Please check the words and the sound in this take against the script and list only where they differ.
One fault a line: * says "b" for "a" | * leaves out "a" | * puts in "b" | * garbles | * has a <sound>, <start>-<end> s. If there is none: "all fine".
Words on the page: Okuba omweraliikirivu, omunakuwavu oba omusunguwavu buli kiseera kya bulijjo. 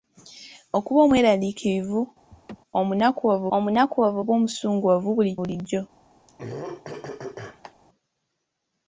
* has a laugh, 2.3-2.6 s
* puts in "omunakuwavu"
* leaves out "kiseera kya"
* has a throat clearing, 6.3-7.7 s